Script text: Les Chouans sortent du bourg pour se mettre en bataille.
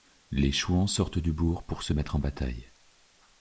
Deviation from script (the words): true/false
false